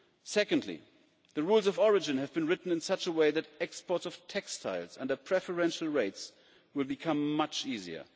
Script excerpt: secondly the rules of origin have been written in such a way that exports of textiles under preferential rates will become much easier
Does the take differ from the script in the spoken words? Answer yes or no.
no